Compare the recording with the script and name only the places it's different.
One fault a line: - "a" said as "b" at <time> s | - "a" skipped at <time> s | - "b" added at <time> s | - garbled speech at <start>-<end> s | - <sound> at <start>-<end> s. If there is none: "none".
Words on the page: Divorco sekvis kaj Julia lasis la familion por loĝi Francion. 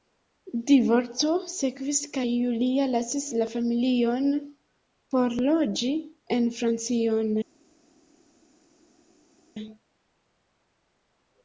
- "en" added at 6.4 s